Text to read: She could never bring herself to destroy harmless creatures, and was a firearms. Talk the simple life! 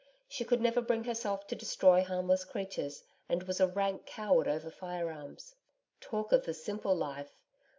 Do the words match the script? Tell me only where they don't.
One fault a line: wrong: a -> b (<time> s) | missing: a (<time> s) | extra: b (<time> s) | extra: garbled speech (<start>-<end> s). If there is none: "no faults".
extra: rank coward over (3.7 s)
extra: of (6.3 s)